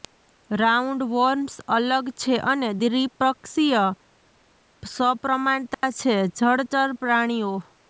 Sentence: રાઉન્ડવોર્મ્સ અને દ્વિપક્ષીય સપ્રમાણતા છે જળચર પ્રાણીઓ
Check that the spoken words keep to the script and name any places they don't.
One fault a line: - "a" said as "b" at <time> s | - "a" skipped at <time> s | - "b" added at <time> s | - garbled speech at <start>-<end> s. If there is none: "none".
- "અલગ છે" added at 1.8 s